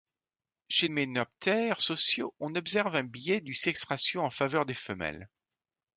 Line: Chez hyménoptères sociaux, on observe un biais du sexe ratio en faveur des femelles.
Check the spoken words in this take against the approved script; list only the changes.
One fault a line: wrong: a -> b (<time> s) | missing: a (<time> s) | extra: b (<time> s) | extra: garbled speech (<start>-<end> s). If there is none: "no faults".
no faults